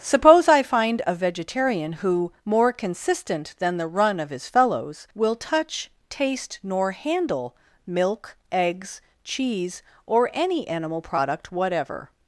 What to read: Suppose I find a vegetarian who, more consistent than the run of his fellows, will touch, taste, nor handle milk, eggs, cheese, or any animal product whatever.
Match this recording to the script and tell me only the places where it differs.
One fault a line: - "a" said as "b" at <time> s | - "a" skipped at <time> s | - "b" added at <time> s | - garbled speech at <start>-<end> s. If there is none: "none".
none